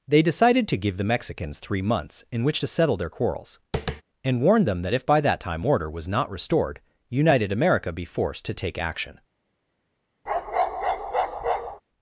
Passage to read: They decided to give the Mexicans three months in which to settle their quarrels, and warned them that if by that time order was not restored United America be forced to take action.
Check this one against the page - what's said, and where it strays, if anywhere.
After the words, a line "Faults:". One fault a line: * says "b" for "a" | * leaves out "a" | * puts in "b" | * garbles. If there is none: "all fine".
They decided to give the Mexicans three months in which to settle their quarrels, and warned them that if by that time order was not restored United America be forced to take action.
Faults:
all fine